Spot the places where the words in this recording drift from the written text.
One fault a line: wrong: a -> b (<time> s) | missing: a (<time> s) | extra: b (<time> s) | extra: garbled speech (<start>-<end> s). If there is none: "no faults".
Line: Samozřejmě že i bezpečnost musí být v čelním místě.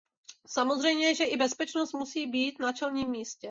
wrong: v -> na (2.6 s)